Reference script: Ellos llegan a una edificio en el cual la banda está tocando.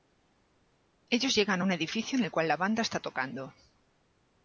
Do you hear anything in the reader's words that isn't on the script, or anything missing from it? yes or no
yes